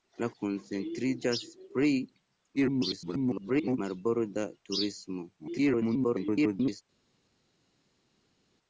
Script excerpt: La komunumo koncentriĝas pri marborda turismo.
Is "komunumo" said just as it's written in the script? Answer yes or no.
no